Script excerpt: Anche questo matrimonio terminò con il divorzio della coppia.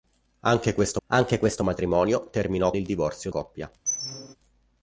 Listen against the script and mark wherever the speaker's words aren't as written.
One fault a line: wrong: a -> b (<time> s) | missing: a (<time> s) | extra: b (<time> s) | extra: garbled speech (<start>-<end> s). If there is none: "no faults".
extra: anche questo (1.1 s)
missing: con (2.7 s)
missing: della (3.3 s)